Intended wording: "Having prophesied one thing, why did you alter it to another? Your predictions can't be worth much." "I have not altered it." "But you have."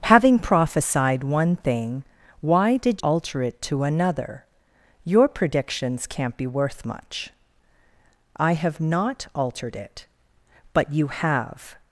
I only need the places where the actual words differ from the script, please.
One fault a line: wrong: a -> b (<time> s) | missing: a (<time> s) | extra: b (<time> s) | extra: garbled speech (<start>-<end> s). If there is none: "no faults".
missing: you (3.0 s)